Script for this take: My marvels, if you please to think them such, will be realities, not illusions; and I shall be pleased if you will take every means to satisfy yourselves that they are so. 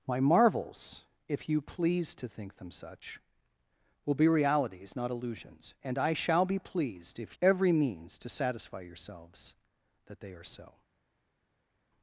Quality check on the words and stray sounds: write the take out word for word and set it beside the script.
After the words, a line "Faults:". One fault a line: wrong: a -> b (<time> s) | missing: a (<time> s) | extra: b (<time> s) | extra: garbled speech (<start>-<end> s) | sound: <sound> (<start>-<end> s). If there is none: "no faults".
My marvels, if you please to think them such, will be realities, not illusions; and I shall be pleased if every means to satisfy yourselves that they are so.
Faults:
missing: you will take (7.4 s)